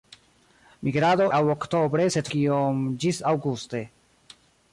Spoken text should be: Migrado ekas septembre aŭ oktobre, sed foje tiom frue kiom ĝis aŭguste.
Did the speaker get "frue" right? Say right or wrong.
wrong